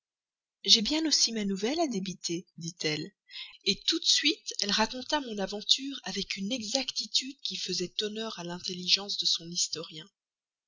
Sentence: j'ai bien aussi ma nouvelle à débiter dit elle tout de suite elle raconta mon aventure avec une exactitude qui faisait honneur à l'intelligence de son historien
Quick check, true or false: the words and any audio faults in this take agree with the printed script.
true